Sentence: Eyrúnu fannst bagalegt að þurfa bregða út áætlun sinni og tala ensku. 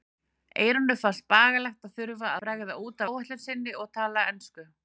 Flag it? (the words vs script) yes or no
no